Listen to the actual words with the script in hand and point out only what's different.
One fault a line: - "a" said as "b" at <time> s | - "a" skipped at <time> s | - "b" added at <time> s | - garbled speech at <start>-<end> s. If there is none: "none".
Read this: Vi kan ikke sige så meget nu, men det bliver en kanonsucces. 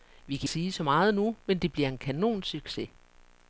- "ikke" skipped at 0.5 s